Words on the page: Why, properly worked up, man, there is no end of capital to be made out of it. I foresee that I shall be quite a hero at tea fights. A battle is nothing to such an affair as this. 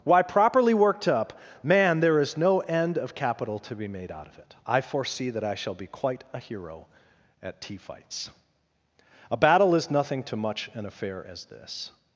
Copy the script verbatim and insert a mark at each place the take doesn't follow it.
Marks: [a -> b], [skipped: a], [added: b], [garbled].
Why, properly worked up, man, there is no end of capital to be made out of it. I foresee that I shall be quite a hero at tea fights. A battle is nothing to [such -> much] an affair as this.